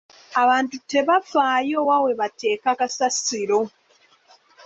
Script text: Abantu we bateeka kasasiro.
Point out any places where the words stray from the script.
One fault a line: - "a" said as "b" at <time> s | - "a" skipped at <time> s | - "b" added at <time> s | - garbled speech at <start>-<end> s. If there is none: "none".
- "tebafaayo wa" added at 0.9 s